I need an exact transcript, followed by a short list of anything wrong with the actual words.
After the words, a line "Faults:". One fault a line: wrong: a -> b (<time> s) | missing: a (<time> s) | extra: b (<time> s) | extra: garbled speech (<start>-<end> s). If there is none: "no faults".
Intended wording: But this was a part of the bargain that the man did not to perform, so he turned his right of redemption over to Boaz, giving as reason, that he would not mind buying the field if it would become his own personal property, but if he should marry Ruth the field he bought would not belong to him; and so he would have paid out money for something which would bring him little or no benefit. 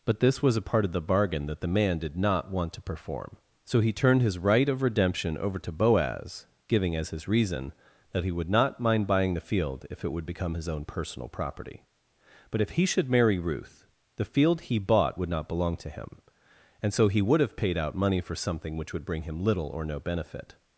But this was a part of the bargain that the man did not want to perform, so he turned his right of redemption over to Boaz, giving as his reason, that he would not mind buying the field if it would become his own personal property, but if he should marry Ruth the field he bought would not belong to him; and so he would have paid out money for something which would bring him little or no benefit.
Faults:
extra: want (2.5 s)
extra: his (7.1 s)